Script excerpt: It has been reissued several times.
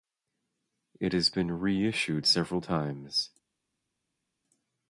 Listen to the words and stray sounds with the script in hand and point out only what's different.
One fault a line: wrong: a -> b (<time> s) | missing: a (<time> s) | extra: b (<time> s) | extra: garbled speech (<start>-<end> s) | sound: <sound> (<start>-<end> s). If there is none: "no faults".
no faults